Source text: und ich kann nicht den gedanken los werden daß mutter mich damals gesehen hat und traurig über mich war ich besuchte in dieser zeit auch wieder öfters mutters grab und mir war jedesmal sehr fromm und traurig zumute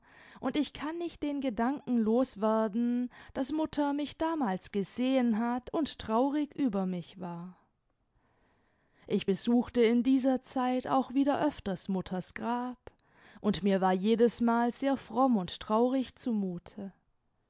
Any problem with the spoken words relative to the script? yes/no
no